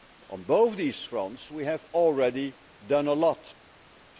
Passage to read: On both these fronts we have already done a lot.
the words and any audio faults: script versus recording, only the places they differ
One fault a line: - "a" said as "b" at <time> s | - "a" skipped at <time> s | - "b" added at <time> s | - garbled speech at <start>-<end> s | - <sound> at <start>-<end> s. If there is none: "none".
none